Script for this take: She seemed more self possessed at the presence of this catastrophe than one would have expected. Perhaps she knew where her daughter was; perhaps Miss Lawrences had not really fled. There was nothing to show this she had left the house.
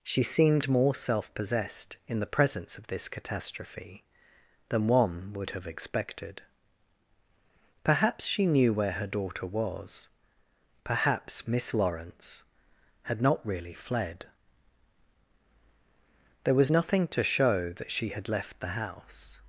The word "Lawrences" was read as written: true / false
false